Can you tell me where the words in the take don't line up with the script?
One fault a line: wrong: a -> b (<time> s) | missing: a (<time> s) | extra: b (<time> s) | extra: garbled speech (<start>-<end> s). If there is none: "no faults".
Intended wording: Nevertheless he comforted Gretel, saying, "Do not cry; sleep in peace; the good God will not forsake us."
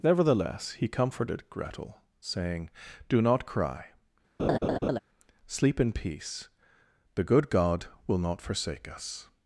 no faults